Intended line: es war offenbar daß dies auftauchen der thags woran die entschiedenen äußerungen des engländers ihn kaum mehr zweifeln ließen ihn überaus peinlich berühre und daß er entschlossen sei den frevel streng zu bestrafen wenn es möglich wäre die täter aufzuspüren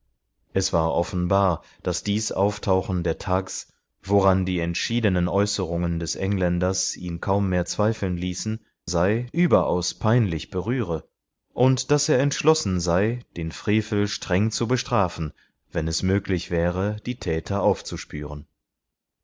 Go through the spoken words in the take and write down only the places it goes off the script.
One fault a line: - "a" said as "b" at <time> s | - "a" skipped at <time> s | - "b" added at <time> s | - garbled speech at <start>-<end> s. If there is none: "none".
- "ihn" said as "sei" at 8.9 s